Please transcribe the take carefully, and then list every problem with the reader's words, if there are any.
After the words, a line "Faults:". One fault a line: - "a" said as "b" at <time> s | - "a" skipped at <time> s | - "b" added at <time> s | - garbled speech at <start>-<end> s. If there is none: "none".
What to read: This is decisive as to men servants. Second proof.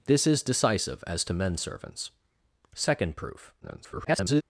This is decisive as to men servants. Second proof. [garbled]
Faults:
- garbled speech at 3.6-4.4 s